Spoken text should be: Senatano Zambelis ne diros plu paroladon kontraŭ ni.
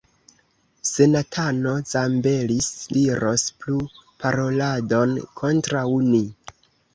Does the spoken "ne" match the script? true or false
false